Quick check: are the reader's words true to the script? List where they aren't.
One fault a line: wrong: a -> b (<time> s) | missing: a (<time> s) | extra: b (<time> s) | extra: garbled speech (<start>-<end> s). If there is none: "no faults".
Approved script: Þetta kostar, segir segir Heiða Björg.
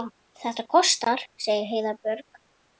missing: segir (1.7 s)